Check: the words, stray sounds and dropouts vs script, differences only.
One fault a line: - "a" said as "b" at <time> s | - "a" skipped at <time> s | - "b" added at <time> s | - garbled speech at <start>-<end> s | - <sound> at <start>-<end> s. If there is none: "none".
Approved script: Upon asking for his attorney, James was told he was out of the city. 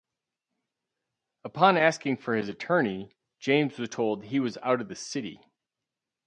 none